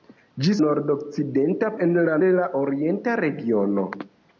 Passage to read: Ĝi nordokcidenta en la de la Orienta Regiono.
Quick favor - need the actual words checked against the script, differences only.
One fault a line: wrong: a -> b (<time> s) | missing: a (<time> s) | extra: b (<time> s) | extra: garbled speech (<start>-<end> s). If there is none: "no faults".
no faults